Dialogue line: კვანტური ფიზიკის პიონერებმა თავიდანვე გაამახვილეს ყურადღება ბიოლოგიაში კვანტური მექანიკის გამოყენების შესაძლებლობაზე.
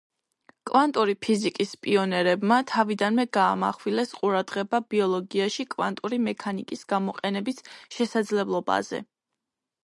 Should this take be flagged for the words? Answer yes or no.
no